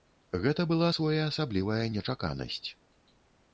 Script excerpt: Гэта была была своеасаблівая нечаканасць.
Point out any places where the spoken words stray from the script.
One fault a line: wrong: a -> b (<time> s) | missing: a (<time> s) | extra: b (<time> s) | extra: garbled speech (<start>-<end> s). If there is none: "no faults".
missing: была (0.9 s)